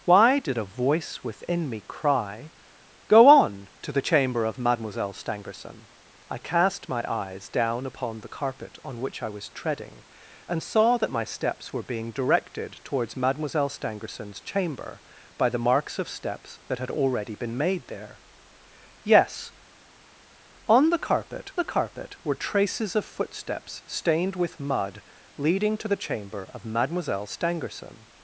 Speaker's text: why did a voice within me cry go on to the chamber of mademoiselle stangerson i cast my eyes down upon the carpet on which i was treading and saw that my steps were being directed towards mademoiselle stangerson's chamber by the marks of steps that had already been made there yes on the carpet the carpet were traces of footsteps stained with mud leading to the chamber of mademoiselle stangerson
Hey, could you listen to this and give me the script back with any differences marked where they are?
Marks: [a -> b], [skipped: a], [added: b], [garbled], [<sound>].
why did a voice within me cry go on to the chamber of mademoiselle stangerson i cast my eyes down upon the carpet on which i was treading and saw that my steps were being directed towards mademoiselle stangerson's chamber by the marks of steps that had already been made there yes on the carpet the carpet were traces of footsteps stained with mud leading to the chamber of mademoiselle stangerson